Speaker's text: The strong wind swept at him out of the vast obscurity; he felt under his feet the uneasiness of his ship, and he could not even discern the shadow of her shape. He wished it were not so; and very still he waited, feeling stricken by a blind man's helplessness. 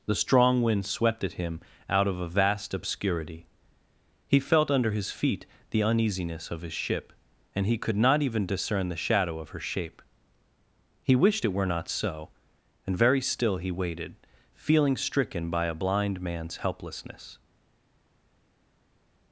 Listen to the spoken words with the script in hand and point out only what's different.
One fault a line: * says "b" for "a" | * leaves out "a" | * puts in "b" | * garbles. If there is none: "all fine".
* says "a" for "the"